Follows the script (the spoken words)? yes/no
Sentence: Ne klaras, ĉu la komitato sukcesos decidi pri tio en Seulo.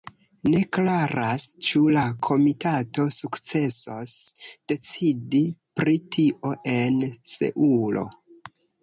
yes